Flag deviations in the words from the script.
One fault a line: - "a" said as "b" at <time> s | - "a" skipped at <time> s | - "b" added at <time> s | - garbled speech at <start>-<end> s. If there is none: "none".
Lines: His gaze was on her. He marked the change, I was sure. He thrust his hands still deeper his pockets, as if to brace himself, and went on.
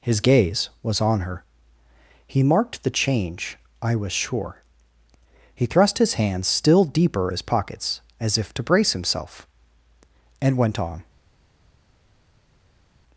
none